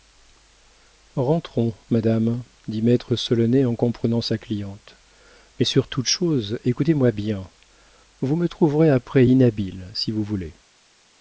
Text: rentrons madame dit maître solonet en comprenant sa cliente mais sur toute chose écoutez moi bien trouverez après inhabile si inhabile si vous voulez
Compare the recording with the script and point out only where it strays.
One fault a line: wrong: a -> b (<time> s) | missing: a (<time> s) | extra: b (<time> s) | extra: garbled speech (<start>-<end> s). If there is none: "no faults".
extra: vous me (8.2 s)
missing: inhabile si (10.1 s)